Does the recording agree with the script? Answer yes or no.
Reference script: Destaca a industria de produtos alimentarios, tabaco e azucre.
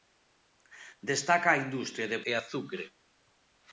no